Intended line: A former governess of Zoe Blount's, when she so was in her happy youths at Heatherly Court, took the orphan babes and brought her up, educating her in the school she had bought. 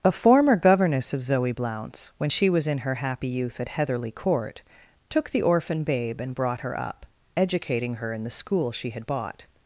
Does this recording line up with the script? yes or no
no